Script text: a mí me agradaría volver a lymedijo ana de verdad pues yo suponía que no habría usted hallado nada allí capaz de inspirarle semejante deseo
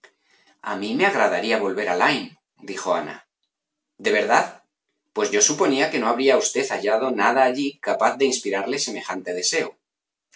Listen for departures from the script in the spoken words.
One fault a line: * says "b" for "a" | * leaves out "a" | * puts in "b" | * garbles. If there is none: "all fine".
all fine